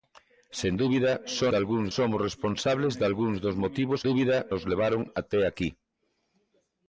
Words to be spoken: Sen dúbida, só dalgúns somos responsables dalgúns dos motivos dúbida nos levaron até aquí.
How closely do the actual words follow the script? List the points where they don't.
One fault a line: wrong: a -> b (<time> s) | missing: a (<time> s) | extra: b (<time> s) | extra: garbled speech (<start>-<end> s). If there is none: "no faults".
no faults